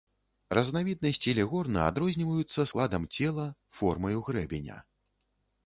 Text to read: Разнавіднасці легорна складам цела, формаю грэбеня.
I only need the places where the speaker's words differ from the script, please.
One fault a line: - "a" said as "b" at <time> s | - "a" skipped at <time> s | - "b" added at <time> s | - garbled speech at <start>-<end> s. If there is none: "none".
- "адрозніваюцца" added at 1.9 s